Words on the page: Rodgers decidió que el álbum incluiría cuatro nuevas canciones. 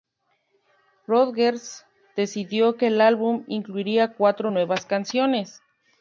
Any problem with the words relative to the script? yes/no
no